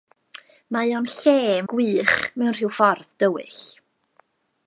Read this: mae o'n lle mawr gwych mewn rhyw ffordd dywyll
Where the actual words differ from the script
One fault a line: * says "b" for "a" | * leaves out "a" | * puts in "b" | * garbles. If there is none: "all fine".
* leaves out "mawr"